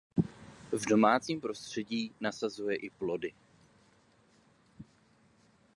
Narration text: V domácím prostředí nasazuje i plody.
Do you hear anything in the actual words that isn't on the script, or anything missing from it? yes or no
no